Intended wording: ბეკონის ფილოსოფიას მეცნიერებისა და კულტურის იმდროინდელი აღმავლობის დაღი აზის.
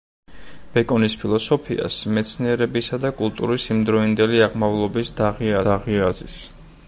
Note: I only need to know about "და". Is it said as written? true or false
true